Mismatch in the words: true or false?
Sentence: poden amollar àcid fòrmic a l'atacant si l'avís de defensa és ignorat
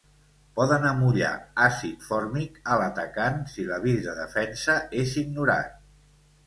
false